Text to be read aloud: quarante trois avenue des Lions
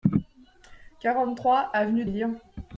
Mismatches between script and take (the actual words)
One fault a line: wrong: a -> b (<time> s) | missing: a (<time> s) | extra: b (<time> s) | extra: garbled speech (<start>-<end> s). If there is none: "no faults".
missing: des (2.0 s)